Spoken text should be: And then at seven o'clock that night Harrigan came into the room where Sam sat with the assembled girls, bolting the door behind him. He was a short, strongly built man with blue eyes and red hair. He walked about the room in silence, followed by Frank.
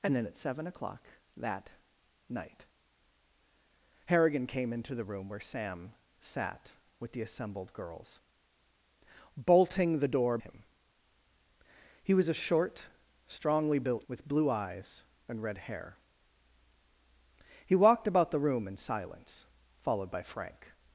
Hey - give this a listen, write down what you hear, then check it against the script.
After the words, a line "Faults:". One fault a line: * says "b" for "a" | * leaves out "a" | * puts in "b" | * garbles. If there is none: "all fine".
And then at seven o'clock that night Harrigan came into the room where Sam sat with the assembled girls, bolting the door him. He was a short, strongly built with blue eyes and red hair. He walked about the room in silence, followed by Frank.
Faults:
* leaves out "behind"
* leaves out "man"